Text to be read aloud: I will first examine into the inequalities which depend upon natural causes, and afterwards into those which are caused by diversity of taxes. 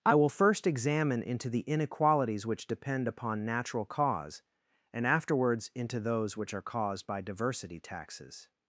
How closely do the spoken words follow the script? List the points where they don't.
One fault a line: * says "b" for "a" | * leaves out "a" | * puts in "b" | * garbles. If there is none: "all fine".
* says "cause" for "causes"
* leaves out "of"